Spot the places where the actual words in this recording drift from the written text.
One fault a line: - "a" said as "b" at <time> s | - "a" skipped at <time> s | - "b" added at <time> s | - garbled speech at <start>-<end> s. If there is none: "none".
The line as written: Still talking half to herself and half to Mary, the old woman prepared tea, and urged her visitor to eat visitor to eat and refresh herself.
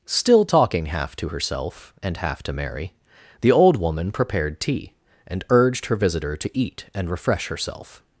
- "visitor to eat" skipped at 6.8 s